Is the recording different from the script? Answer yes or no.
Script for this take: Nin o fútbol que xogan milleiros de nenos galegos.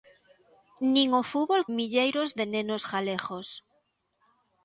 yes